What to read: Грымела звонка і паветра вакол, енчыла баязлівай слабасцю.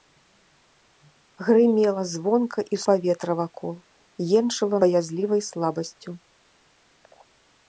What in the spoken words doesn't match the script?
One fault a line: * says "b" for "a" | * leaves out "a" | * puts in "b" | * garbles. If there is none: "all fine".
all fine